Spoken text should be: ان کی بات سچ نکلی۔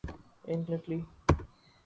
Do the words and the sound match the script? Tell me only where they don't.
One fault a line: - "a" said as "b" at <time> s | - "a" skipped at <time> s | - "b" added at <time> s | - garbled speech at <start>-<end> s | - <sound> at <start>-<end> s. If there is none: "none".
- "کی بات سچ" skipped at 0.6 s